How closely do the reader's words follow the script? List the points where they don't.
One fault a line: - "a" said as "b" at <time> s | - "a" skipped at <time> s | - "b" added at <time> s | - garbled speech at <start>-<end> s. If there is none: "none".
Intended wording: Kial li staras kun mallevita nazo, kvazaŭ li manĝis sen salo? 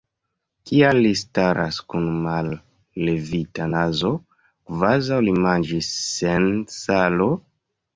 none